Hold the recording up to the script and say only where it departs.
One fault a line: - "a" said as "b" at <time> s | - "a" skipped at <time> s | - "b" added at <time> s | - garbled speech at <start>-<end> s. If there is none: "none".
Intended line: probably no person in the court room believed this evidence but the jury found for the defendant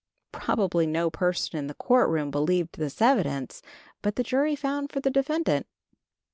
none